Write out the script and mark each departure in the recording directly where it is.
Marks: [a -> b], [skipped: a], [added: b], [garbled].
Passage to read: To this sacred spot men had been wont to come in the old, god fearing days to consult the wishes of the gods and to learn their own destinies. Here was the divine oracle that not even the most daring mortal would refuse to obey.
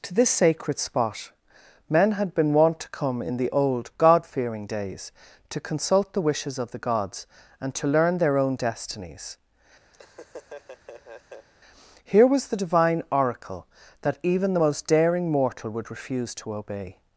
To this sacred spot men had been wont to come in the old, god fearing days to consult the wishes of the gods and to learn their own destinies. Here was the divine oracle that [skipped: not] even the most daring mortal would refuse to obey.